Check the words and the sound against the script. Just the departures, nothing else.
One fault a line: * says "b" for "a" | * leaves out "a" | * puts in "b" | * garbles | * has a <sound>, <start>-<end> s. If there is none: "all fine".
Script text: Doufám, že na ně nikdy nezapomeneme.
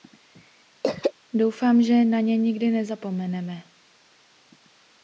* has a throat clearing, 0.8-1.1 s